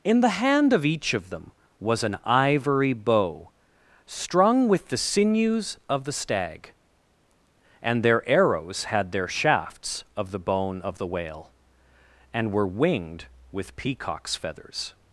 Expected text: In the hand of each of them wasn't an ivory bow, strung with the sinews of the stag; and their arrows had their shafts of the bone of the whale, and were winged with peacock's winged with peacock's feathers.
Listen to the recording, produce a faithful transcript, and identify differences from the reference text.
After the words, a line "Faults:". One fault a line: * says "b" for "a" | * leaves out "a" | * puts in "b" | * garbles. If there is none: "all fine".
In the hand of each of them was an ivory bow, strung with the sinews of the stag; and their arrows had their shafts of the bone of the whale, and were winged with peacock's feathers.
Faults:
* says "was" for "wasn't"
* leaves out "winged with peacock's"